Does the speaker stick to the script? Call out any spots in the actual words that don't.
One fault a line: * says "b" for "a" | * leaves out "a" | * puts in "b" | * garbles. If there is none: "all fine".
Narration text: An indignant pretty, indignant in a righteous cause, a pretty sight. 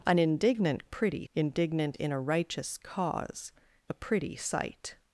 all fine